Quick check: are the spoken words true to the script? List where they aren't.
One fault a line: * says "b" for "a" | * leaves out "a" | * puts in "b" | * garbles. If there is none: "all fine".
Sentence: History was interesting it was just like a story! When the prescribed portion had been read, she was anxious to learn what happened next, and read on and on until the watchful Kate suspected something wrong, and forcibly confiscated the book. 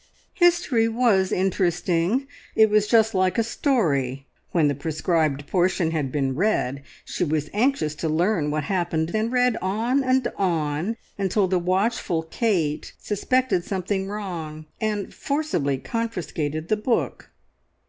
* leaves out "next"